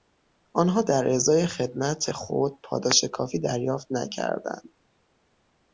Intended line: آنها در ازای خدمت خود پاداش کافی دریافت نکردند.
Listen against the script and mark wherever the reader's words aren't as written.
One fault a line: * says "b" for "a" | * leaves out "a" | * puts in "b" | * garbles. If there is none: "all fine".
all fine